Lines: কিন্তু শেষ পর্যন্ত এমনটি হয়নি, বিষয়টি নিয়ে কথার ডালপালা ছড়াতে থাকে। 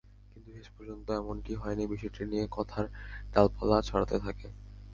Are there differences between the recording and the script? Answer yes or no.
no